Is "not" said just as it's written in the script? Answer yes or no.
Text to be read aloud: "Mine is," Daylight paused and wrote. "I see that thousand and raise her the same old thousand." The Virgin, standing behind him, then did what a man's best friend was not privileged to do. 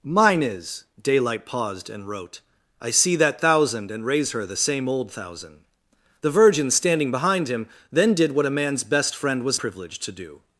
no